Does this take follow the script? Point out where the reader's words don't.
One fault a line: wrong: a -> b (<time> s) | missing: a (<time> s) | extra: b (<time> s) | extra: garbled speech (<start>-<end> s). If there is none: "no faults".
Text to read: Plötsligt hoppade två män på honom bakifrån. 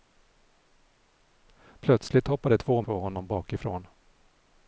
missing: män (2.8 s)